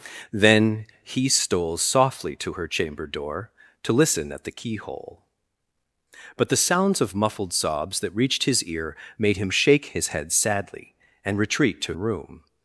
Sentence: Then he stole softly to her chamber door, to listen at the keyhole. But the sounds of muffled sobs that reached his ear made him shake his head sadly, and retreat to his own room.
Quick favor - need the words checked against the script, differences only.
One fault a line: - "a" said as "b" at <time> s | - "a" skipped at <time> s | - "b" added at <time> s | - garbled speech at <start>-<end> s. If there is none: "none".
- "his own" skipped at 11.9 s